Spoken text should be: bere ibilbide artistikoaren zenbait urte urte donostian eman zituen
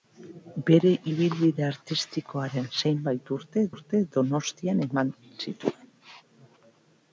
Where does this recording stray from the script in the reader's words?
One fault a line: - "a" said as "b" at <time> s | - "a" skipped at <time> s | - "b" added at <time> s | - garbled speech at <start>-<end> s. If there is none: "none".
none